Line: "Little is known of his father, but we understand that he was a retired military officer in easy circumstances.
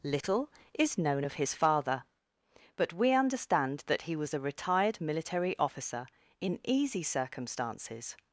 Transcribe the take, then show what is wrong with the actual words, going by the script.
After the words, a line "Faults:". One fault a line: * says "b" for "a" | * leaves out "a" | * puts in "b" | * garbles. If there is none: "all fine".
"Little is known of his father, but we understand that he was a retired military officer in easy circumstances.
Faults:
all fine